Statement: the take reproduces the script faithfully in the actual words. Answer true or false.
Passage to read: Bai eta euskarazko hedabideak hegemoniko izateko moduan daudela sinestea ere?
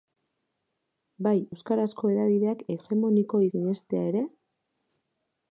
false